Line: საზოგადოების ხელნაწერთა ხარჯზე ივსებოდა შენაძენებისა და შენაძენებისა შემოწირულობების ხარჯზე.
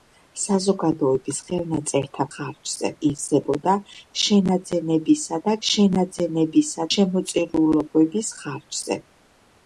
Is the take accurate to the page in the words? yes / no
yes